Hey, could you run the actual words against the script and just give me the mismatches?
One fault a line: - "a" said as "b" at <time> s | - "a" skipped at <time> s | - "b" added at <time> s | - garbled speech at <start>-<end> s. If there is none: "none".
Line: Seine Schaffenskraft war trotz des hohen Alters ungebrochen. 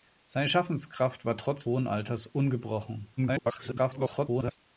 - "des" skipped at 1.7 s
- garbled speech at 3.2-4.6 s